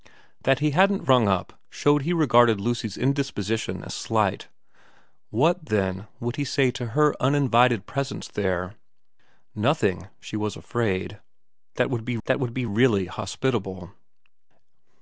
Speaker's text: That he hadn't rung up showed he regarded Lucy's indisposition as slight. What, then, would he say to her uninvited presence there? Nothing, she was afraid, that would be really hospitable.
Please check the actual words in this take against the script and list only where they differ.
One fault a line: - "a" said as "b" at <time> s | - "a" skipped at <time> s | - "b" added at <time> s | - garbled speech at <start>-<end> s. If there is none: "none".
- "that would be" added at 12.3 s